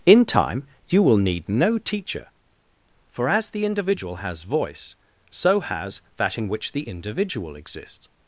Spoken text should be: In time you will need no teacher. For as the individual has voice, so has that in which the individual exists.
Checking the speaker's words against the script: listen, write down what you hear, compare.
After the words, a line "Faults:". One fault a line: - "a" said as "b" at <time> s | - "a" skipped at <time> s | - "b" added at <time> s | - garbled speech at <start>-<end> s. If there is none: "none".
In time you will need no teacher. For as the individual has voice, so has that in which the individual exists.
Faults:
none